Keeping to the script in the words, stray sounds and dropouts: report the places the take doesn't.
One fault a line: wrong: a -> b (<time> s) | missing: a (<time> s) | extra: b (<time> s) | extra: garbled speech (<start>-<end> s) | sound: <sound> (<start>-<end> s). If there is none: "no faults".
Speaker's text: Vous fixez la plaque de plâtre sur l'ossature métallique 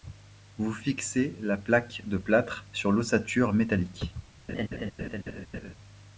sound: laugh (4.5-5.7 s)